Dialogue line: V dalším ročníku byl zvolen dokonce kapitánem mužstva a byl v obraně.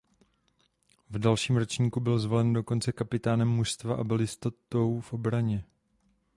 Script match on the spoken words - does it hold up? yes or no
no